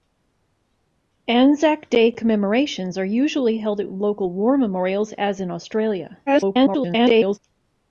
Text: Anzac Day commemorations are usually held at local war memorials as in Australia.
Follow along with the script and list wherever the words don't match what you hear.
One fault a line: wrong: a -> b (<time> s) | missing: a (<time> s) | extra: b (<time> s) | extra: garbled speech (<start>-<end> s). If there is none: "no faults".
extra: garbled speech (6.3-7.4 s)